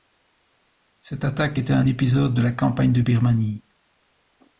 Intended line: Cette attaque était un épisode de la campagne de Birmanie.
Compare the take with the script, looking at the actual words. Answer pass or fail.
pass